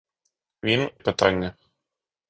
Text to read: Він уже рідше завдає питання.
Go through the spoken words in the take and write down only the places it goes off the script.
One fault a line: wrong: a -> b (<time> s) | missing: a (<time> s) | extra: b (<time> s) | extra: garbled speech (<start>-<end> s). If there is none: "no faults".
missing: уже рідше завдає (0.9 s)